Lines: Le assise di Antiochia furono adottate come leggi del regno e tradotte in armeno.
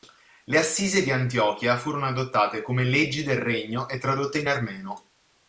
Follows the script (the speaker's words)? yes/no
yes